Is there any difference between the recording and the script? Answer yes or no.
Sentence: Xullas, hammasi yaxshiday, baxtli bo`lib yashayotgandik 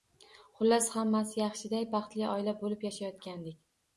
yes